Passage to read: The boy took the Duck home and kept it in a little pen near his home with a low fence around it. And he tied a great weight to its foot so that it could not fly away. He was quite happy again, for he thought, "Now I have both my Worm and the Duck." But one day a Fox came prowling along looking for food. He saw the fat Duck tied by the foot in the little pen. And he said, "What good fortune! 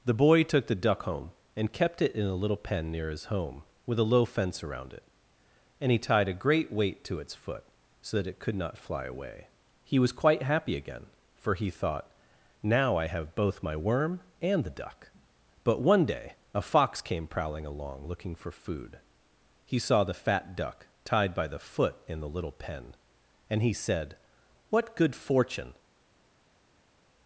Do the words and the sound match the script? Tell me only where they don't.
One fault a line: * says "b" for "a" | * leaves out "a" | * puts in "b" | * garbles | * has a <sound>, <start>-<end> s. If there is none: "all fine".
all fine